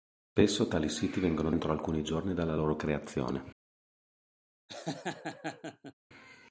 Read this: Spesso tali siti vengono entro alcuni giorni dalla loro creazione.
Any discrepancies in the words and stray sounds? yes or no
yes